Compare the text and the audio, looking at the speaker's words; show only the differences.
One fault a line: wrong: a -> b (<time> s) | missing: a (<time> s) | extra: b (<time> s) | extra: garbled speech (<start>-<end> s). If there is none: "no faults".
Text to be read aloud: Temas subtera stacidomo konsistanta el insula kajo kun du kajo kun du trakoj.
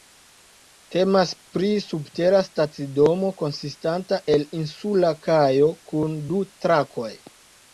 extra: pri (1.6 s)
missing: kajo kun du (6.5 s)